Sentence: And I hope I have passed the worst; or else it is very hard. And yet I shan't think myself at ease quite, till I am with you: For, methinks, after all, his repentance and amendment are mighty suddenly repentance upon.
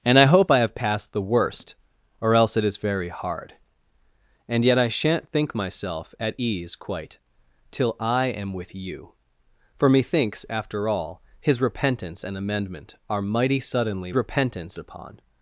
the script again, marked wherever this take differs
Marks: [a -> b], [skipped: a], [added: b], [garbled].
And I hope I have passed the worst; or else it is very hard. And yet I shan't think myself at ease quite, till I am with you: For, methinks, after all, his repentance and amendment are mighty suddenly repentance upon.